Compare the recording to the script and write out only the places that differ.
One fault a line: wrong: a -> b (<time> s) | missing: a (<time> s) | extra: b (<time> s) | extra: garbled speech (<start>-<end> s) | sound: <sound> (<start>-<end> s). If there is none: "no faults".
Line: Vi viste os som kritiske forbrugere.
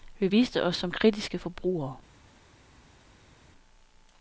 no faults